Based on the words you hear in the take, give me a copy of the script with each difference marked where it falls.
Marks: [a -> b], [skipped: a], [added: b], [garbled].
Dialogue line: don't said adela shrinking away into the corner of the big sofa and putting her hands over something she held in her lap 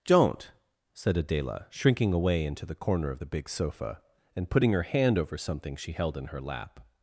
don't said adela shrinking away into the corner of the big sofa and putting her [hands -> hand] over something she held in her lap